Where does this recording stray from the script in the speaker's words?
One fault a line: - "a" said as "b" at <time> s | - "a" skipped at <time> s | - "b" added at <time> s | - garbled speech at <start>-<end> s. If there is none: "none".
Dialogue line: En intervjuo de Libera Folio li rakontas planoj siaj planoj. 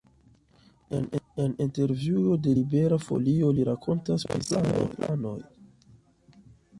- "planoj" said as "pri" at 4.3 s